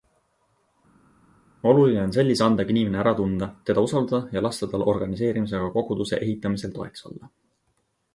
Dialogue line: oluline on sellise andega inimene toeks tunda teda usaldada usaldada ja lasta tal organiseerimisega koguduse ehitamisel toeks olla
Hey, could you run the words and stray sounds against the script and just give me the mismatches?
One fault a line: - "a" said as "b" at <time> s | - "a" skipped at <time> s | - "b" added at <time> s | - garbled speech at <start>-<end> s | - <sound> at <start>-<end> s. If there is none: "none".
- "toeks" said as "ära" at 3.0 s
- "usaldada" skipped at 4.4 s